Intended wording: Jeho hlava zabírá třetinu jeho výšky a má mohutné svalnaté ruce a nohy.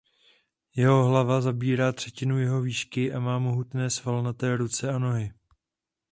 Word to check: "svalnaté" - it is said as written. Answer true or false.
true